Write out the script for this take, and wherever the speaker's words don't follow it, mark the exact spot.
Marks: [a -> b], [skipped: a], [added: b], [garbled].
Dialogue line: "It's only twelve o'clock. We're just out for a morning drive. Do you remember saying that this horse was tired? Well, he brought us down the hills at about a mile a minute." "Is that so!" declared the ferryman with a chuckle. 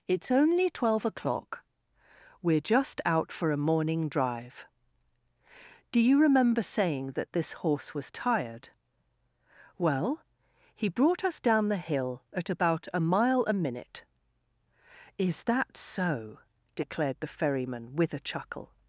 "It's only twelve o'clock. We're just out for a morning drive. Do you remember saying that this horse was tired? Well, he brought us down the [hills -> hill] at about a mile a minute." "Is that so!" declared the ferryman with a chuckle.